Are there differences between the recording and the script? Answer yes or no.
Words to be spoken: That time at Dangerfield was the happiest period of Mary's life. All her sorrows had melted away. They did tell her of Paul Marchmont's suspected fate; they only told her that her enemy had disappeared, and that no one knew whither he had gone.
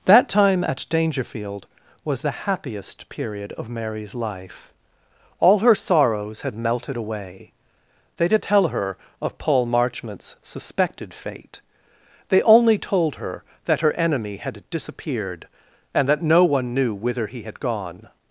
no